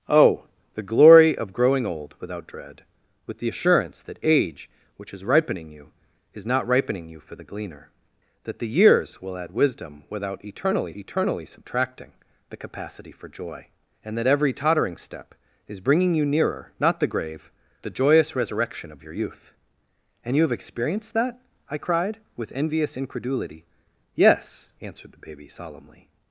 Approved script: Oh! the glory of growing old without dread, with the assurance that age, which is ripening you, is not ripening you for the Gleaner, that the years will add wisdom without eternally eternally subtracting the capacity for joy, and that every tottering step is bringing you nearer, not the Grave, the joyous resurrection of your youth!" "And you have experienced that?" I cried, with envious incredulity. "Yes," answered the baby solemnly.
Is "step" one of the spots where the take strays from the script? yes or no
no